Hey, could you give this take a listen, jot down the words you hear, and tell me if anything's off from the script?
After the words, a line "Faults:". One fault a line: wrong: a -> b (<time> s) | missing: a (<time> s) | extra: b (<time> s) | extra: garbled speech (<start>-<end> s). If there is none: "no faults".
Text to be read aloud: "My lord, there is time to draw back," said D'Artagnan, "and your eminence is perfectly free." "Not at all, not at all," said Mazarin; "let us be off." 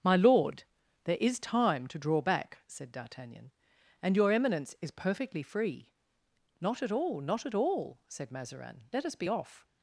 "My lord, there is time to draw back," said D'Artagnan, "and your eminence is perfectly free." "Not at all, not at all," said Mazarin; "let us be off."
Faults:
no faults